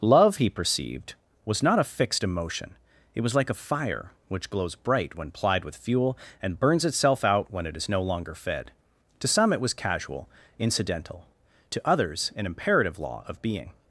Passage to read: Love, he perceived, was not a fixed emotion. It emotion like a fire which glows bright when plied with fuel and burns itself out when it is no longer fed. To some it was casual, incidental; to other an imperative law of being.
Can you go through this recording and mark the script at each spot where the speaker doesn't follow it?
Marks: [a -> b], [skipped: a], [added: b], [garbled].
Love, he perceived, was not a fixed emotion. It [emotion -> was] like a fire which glows bright when plied with fuel and burns itself out when it is no longer fed. To some it was casual, incidental; to [other -> others] an imperative law of being.